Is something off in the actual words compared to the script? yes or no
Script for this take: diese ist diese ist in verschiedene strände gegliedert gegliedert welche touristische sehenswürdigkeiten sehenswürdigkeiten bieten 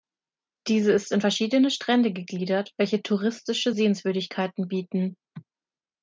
yes